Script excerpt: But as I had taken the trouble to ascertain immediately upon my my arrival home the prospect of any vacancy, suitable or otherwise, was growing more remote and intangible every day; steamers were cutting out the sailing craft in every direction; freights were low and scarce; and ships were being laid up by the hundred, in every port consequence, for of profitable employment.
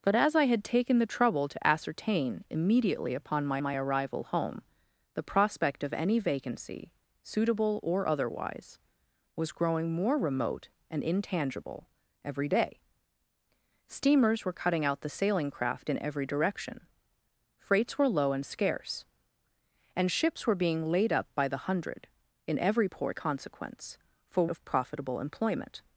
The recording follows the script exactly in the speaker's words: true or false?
true